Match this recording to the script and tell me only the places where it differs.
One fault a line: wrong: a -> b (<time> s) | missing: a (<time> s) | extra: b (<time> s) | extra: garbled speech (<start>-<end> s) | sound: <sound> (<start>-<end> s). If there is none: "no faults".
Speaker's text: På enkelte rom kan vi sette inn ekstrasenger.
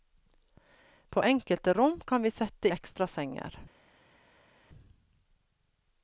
missing: inn (2.7 s)